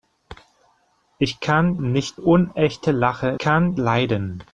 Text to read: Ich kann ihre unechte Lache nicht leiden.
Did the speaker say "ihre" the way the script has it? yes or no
no